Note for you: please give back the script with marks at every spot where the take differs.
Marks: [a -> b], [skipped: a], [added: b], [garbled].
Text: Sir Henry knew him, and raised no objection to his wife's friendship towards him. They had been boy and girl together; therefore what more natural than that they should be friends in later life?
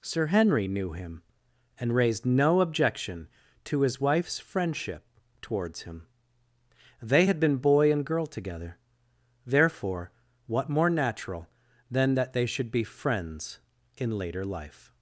Sir Henry knew him, and raised no objection to his wife's friendship towards him. They had been boy and girl together; therefore what more natural than that they should be friends in later life?